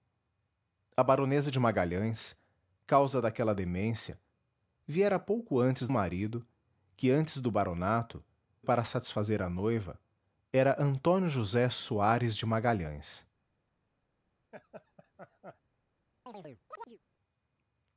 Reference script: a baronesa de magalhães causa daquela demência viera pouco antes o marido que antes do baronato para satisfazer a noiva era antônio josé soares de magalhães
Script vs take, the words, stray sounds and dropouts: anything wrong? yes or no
yes